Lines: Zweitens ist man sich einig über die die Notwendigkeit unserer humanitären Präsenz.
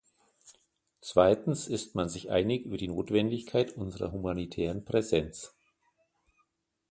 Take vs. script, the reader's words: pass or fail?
fail